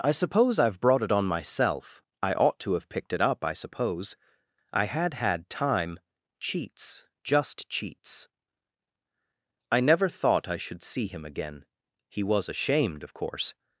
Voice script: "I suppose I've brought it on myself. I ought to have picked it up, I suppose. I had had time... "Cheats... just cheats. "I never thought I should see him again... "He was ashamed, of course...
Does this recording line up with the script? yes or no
yes